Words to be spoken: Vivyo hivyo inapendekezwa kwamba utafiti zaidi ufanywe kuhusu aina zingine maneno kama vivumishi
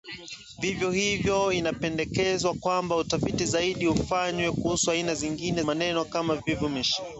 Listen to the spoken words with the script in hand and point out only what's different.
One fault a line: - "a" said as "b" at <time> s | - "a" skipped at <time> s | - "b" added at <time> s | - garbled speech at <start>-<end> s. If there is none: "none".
none